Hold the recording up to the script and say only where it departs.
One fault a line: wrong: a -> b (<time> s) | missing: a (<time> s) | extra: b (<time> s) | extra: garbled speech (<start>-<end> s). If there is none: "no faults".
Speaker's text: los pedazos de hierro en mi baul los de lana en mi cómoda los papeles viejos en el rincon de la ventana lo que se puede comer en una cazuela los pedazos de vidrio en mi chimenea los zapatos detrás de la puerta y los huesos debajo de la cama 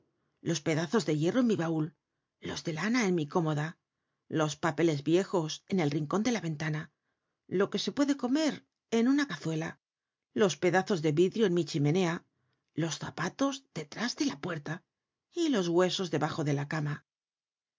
no faults